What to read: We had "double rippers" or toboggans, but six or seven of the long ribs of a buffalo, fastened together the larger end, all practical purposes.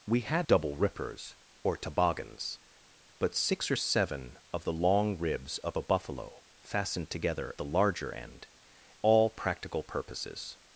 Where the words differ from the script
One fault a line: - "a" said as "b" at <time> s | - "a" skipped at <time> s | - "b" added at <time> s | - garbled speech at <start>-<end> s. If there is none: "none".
none